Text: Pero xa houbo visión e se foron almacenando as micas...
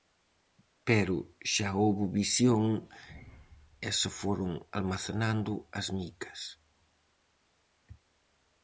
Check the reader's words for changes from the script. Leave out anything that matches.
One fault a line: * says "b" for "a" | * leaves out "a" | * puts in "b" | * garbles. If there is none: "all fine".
all fine